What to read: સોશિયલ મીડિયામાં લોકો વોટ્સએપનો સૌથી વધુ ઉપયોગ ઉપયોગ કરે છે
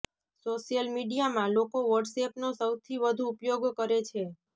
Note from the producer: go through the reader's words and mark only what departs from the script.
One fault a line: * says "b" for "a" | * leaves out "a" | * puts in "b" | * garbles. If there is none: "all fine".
* leaves out "ઉપયોગ"